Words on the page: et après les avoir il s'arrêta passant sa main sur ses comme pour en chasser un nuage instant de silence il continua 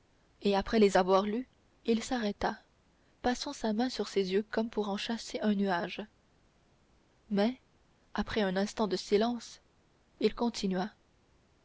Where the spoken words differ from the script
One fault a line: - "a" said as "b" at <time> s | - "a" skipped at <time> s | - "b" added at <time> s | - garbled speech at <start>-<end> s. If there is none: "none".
- "lus" added at 1.2 s
- "yeux" added at 4.3 s
- "mais après un" added at 7.3 s